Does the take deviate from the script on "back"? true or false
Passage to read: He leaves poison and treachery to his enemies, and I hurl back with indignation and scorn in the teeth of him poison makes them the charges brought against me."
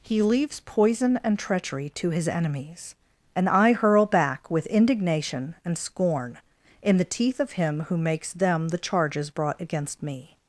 false